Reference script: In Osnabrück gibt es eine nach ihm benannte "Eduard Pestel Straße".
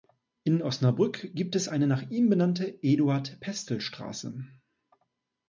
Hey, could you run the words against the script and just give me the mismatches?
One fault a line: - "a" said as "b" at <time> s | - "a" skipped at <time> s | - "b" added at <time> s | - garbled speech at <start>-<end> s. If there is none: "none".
none